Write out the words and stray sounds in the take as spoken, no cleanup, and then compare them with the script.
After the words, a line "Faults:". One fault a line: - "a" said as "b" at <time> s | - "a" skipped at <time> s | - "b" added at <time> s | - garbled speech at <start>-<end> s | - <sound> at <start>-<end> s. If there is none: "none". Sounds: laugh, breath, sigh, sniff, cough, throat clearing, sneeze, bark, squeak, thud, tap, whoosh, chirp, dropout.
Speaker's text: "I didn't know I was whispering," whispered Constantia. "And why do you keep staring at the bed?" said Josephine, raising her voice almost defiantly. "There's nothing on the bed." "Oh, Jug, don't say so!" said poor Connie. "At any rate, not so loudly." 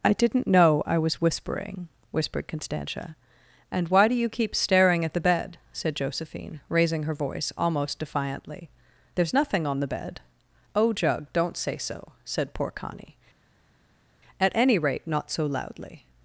"I didn't know I was whispering," whispered Constantia. "And why do you keep staring at the bed?" said Josephine, raising her voice almost defiantly. "There's nothing on the bed." "Oh, Jug, don't say so!" said poor Connie. "At any rate, not so loudly."
Faults:
none